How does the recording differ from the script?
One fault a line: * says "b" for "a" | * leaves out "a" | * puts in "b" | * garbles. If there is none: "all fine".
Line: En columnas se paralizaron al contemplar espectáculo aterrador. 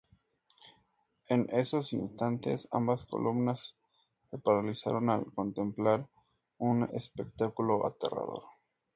* puts in "esos instantes ambas"
* puts in "un"